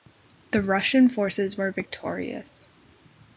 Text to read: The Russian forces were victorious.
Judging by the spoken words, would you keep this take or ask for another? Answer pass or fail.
pass